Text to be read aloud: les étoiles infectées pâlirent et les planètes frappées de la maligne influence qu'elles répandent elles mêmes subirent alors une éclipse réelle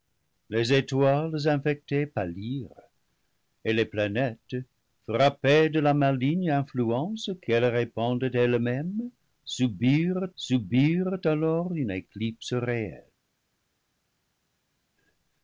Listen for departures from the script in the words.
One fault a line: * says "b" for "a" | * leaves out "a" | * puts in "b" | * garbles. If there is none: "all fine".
* puts in "subirent"